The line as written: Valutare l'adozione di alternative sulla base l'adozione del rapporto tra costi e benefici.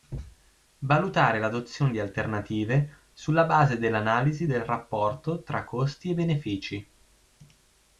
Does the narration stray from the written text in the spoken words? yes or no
yes